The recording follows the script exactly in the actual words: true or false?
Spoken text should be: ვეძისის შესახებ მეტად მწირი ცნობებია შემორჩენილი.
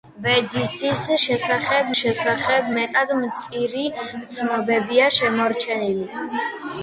false